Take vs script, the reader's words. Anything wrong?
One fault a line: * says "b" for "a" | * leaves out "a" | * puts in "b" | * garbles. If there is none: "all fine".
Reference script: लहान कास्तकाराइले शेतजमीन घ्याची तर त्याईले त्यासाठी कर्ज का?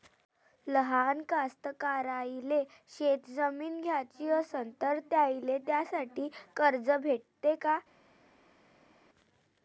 * puts in "असन"
* puts in "भेटते"